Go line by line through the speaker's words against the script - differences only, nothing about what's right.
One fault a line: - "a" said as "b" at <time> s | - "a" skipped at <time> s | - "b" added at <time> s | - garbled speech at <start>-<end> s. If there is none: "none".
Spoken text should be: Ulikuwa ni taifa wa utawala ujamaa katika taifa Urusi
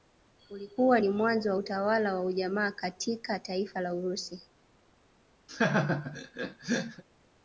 - "taifa" said as "mwanzo" at 1.1 s
- "wa" added at 2.1 s
- "la" added at 3.8 s